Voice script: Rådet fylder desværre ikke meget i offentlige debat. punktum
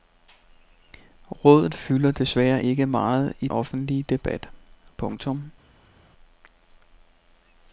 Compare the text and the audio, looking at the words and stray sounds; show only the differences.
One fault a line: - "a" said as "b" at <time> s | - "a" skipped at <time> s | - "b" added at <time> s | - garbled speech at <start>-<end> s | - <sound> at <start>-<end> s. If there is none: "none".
none